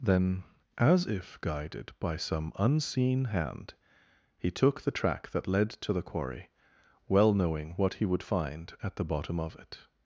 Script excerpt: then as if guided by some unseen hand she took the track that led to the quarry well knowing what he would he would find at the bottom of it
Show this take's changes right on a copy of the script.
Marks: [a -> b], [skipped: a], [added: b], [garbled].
then as if guided by some unseen hand [she -> he] took the track that led to the quarry well knowing what he would [skipped: he would] find at the bottom of it